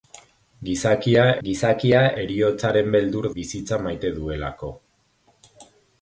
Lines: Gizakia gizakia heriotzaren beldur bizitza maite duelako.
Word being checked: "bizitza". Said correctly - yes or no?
yes